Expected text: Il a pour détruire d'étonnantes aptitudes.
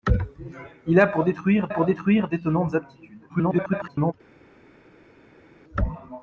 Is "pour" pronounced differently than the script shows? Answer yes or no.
no